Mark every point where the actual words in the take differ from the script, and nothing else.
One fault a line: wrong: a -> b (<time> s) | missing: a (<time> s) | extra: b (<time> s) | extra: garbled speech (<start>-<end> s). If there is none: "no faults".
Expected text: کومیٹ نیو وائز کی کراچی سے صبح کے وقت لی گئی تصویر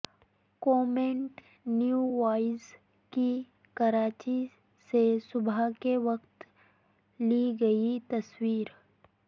no faults